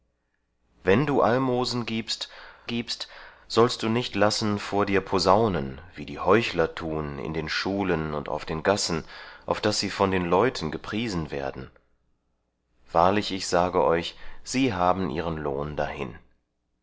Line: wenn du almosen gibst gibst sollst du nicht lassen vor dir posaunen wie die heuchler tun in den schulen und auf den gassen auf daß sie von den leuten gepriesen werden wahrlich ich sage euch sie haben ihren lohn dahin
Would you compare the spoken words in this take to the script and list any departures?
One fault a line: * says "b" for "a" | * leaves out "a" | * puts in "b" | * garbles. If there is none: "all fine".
all fine